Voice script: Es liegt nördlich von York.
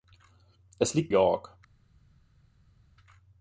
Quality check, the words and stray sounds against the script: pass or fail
fail